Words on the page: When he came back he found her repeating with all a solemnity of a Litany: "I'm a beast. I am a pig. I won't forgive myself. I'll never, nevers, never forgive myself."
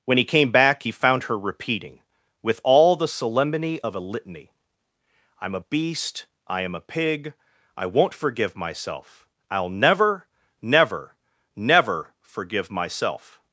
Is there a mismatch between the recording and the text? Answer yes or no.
yes